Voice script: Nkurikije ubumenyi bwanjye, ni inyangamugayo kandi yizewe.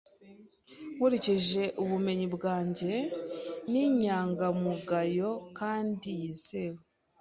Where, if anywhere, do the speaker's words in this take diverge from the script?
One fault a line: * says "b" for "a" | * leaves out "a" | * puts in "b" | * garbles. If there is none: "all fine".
all fine